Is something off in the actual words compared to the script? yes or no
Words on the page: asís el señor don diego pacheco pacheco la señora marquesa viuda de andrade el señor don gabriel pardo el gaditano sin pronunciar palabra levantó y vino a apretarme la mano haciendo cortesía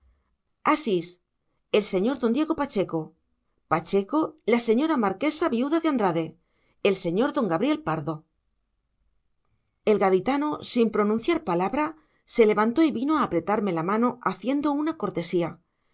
yes